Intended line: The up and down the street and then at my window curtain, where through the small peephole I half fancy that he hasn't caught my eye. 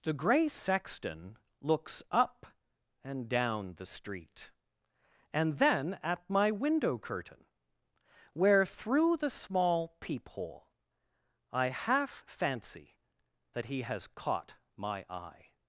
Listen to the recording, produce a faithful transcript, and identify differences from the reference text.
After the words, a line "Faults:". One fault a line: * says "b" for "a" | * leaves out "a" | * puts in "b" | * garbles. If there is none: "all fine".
The gray sexton looks up and down the street and then at my window curtain, where through the small peephole I half fancy that he has caught my eye.
Faults:
* puts in "gray sexton looks"
* says "has" for "hasn't"